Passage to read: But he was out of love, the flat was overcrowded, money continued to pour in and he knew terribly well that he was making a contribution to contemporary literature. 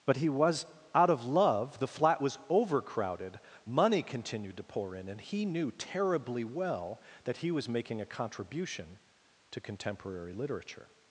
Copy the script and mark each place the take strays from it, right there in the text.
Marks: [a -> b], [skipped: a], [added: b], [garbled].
But he was out of love, the flat was overcrowded, money continued to pour in and he knew terribly well that he was making a contribution to contemporary literature.